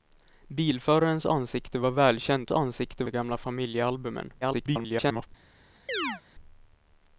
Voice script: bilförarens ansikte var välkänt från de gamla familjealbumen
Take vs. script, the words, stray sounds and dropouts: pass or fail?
fail